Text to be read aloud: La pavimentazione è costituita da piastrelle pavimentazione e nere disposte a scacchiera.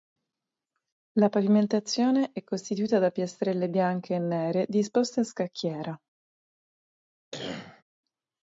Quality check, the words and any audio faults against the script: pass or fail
fail